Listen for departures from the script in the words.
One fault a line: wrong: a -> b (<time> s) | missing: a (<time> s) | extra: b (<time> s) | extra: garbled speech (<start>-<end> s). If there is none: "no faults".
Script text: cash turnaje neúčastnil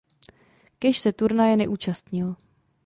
extra: se (1.0 s)